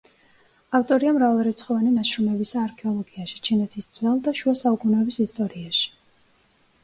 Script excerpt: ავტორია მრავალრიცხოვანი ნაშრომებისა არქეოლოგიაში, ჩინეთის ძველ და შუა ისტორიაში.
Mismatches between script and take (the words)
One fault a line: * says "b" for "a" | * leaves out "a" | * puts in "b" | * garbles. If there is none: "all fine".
* puts in "საუკუნეების"